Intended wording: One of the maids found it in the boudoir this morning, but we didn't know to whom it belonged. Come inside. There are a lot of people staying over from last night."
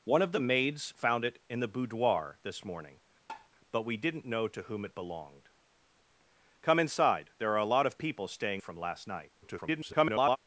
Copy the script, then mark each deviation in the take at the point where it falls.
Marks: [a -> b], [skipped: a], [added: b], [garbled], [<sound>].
One of the maids found it in the boudoir this morning, [tap] but we didn't know to whom it belonged. Come inside. There are a lot of people staying [skipped: over] from last night." [garbled]